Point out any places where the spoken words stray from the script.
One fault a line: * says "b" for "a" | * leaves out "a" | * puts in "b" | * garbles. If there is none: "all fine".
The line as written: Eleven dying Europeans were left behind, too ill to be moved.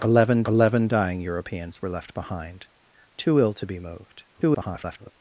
* puts in "eleven"
* garbles